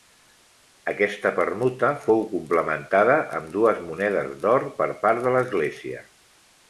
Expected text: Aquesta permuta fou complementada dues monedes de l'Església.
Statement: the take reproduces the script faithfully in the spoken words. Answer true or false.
false